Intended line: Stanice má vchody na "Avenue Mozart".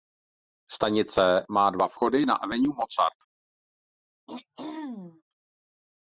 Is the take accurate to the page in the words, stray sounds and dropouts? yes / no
no